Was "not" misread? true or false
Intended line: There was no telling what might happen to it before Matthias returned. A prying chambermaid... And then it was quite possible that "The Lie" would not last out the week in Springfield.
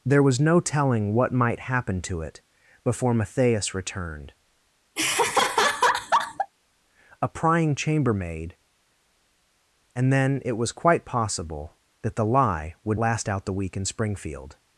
true